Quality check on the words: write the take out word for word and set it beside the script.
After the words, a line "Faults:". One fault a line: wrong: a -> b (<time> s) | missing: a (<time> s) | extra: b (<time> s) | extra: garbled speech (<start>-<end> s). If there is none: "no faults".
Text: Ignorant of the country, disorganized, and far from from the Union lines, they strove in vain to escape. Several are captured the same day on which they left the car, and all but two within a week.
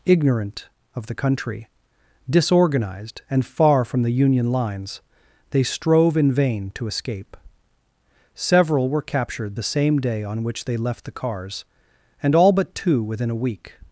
Ignorant of the country, disorganized, and far from the Union lines, they strove in vain to escape. Several were captured the same day on which they left the cars, and all but two within a week.
Faults:
missing: from (4.0 s)
wrong: are -> were (8.9 s)
wrong: car -> cars (11.1 s)